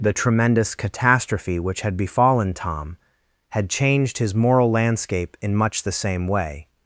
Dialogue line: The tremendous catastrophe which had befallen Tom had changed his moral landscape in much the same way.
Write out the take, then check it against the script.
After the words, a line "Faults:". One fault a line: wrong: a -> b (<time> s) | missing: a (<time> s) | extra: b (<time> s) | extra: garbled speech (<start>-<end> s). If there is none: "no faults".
The tremendous catastrophe which had befallen Tom had changed his moral landscape in much the same way.
Faults:
no faults